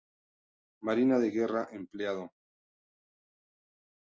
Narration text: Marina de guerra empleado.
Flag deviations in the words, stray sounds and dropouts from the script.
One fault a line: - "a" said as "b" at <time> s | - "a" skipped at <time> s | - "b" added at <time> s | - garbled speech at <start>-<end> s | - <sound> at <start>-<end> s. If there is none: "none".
none